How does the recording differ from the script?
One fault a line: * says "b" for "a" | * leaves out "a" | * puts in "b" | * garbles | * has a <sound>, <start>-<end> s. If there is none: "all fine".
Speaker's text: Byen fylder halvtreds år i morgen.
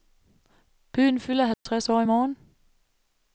* has a dropout, 1.5-1.7 s